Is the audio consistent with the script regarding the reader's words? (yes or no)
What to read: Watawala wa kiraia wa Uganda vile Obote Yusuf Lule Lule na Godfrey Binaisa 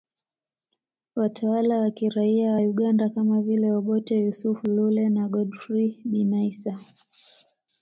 no